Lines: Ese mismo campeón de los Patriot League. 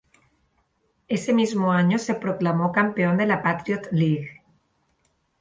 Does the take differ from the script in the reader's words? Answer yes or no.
yes